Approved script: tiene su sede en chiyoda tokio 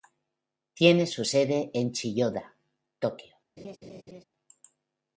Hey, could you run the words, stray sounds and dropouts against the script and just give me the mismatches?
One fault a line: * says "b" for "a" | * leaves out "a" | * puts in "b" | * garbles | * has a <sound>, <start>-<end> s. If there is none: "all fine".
* has a laugh, 3.6-4.2 s